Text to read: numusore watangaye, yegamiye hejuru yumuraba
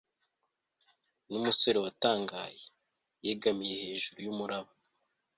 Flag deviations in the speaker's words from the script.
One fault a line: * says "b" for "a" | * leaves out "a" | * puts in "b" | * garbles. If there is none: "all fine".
all fine